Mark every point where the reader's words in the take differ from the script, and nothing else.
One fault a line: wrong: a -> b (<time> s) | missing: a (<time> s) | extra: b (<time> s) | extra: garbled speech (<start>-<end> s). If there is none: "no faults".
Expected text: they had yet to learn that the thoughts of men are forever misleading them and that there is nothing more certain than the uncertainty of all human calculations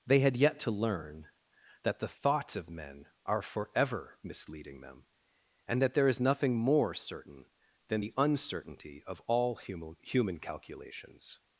extra: human (10.0 s)